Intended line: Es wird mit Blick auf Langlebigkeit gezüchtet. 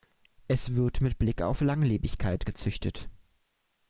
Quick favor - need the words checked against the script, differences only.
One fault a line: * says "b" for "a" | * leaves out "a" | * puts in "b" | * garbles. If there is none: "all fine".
all fine